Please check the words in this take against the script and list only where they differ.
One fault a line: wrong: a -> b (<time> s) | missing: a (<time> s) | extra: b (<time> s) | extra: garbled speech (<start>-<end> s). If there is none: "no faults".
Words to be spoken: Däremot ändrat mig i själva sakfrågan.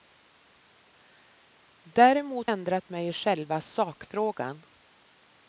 no faults